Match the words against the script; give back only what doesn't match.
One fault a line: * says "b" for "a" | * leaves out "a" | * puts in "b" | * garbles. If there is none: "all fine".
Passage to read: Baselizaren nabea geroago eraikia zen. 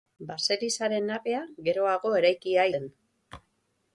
all fine